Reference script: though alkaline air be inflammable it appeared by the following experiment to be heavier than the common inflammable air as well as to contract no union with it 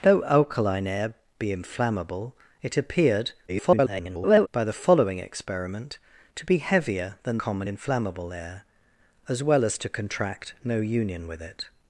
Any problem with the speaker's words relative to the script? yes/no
yes